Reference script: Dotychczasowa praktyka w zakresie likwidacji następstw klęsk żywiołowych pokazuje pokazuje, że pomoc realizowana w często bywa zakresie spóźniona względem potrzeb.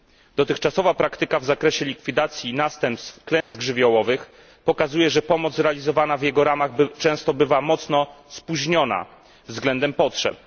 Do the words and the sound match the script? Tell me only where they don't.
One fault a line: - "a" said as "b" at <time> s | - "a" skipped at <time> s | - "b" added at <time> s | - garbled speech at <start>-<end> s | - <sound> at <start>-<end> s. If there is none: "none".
- dropout at 3.4-3.5 s
- "pokazuje" skipped at 5.1 s
- "jego ramach" added at 6.2 s
- "zakresie" said as "mocno" at 7.6 s